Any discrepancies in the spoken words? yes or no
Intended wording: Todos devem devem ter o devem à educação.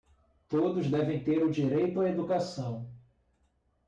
yes